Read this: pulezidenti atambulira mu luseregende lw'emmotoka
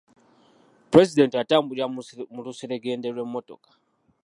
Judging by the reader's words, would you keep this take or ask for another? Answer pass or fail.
pass